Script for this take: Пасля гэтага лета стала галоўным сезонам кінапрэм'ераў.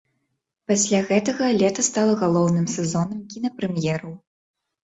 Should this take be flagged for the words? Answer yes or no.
no